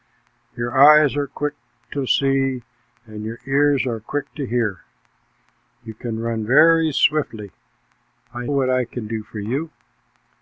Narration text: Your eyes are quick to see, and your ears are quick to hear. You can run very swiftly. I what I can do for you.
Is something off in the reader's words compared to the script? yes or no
no